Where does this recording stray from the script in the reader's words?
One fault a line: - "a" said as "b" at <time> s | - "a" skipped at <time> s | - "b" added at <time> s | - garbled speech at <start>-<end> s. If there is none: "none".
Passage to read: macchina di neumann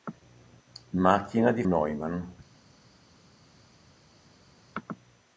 none